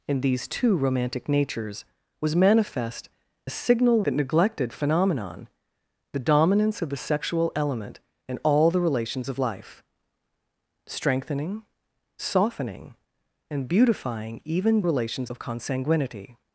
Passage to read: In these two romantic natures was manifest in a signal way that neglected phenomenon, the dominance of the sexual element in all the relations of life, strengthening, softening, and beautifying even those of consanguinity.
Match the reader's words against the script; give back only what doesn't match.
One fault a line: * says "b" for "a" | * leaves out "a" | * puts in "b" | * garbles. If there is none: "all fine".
* leaves out "in"
* leaves out "way"
* says "relations" for "those"